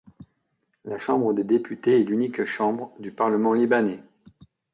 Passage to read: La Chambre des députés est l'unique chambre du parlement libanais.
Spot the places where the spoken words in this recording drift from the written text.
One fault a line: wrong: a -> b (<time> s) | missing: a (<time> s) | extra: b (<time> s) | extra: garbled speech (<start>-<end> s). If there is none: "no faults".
no faults